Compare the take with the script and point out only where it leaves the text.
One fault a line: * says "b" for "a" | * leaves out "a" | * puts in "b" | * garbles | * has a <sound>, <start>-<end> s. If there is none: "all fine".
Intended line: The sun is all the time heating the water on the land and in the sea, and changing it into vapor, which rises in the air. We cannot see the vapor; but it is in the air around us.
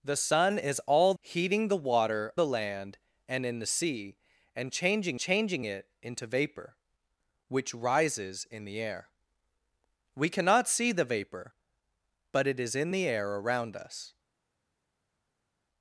* leaves out "the time"
* leaves out "on"
* puts in "changing"